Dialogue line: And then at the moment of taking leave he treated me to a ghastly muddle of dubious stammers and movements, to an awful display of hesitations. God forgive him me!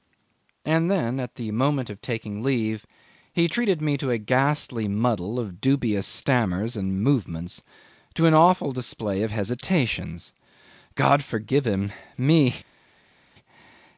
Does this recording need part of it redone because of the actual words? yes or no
no